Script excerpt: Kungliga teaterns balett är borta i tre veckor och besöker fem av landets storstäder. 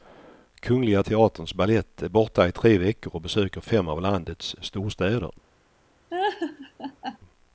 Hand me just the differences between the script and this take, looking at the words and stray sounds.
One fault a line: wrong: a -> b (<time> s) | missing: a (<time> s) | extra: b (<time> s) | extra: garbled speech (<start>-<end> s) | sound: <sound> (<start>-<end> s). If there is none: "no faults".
sound: laugh (6.1-7.2 s)